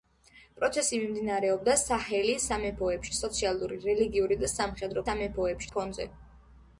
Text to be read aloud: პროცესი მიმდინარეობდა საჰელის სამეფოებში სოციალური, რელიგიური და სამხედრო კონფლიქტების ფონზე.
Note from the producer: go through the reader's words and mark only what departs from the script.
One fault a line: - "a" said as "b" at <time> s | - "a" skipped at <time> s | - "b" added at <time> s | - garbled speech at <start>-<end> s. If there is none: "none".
- "კონფლიქტების" said as "სამეფოებში" at 5.1 s